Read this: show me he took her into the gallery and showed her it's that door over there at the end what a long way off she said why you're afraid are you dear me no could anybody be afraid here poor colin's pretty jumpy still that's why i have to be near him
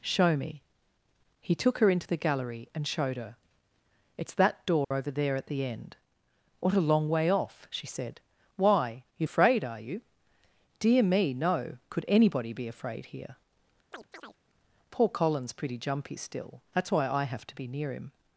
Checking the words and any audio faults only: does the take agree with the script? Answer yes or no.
no